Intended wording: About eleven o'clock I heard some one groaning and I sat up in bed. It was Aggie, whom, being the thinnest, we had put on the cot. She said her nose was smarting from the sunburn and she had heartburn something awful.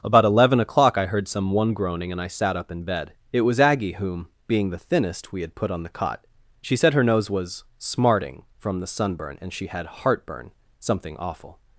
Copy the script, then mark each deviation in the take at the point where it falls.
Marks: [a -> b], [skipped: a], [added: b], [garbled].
About eleven o'clock I heard some one groaning and I sat up in bed. It was Aggie, whom, being the thinnest, we had put on the cot. She said her nose was smarting from the sunburn and she had heartburn something awful.